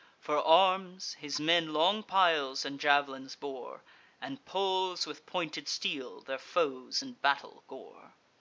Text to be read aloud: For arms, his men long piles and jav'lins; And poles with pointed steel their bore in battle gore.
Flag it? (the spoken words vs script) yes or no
yes